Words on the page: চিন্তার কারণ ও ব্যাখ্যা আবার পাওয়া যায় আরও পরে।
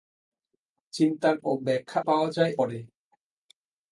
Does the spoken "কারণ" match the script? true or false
false